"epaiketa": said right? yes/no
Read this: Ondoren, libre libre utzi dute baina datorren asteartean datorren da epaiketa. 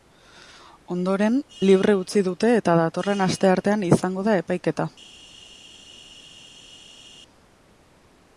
yes